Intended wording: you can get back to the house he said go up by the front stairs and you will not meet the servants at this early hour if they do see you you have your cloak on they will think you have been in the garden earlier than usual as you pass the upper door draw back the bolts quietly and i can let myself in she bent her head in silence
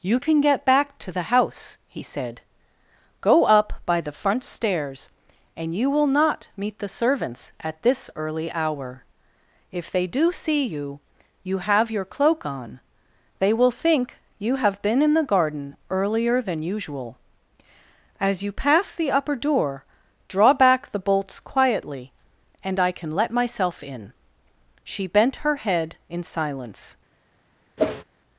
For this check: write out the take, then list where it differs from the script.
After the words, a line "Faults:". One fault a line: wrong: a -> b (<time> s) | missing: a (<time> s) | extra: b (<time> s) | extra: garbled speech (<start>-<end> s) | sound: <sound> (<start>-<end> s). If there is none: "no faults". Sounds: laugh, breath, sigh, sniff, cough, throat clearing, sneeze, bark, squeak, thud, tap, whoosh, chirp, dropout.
you can get back to the house he said go up by the front stairs and you will not meet the servants at this early hour if they do see you you have your cloak on they will think you have been in the garden earlier than usual as you pass the upper door draw back the bolts quietly and i can let myself in she bent her head in silence
Faults:
sound: whoosh (27.8-28.0 s)